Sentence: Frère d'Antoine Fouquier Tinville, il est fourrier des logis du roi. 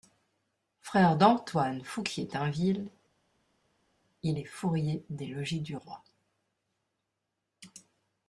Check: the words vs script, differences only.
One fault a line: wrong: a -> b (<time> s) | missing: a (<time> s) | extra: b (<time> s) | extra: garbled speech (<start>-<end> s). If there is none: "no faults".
no faults